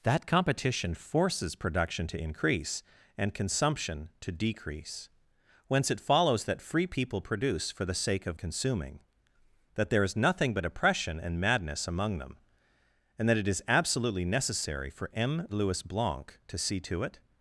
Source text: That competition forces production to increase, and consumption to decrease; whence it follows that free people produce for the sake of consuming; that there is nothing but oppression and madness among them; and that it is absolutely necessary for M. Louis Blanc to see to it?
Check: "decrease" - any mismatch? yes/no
no